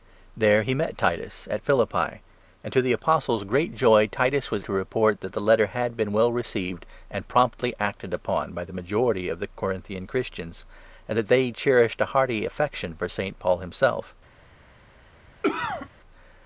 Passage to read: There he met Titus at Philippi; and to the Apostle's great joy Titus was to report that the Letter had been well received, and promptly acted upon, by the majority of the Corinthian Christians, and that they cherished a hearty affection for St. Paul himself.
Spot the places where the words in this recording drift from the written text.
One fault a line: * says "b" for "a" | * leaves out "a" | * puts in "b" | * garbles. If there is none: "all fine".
all fine